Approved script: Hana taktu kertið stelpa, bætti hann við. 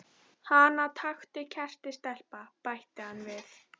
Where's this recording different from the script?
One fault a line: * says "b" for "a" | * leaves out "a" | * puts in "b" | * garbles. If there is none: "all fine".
all fine